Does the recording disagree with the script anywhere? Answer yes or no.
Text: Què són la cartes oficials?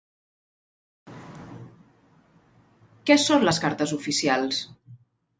yes